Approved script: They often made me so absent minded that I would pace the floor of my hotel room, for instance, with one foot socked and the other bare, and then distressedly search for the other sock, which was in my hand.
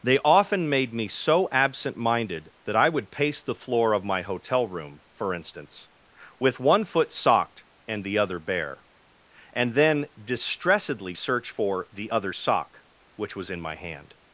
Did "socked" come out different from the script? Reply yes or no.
no